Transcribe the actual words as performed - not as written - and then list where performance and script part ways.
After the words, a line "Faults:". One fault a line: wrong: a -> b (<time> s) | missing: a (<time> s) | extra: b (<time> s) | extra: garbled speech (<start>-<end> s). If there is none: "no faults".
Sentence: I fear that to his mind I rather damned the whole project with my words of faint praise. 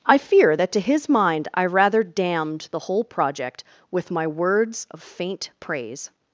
I fear that to his mind I rather damned the whole project with my words of faint praise.
Faults:
no faults